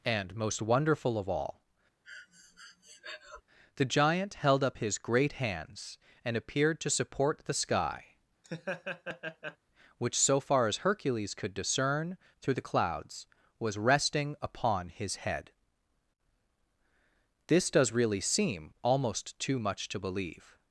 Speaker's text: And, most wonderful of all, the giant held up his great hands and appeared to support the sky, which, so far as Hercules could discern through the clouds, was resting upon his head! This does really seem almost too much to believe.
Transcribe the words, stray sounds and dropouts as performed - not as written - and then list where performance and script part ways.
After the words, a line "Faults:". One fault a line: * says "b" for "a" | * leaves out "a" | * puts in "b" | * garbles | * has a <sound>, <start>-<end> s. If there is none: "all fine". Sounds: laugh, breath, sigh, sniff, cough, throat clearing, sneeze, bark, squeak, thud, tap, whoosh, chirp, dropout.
And, most wonderful of all, the giant held up his great hands and appeared to support the sky, which, so far as Hercules could discern through the clouds, was resting upon his head! This does really seem almost too much to believe.
Faults:
* has a breath, 2.0-3.4 s
* has a laugh, 8.4-9.6 s